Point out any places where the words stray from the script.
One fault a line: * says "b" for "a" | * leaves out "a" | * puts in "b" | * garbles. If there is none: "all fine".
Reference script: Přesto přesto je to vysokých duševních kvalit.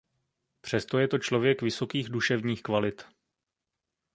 * leaves out "přesto"
* puts in "člověk"